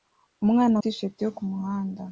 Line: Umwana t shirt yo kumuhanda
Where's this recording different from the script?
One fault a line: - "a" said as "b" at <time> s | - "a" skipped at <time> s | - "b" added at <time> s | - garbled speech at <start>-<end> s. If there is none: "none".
none